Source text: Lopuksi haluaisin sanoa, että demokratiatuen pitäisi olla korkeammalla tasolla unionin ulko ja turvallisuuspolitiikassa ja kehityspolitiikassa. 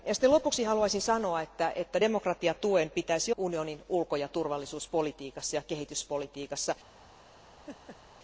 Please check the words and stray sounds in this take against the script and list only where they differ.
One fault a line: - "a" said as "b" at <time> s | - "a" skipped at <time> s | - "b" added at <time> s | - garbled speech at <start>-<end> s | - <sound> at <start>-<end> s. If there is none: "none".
- "olla korkeammalla tasolla" skipped at 3.3 s
- laugh at 7.7-8.0 s